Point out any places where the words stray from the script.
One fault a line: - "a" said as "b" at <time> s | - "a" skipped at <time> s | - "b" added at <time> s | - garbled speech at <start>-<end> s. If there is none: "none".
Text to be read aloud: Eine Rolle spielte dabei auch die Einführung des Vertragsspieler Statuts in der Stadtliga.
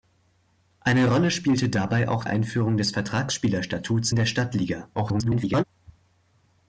- "die" skipped at 2.2 s
- "in" skipped at 4.1 s
- garbled speech at 4.9-5.6 s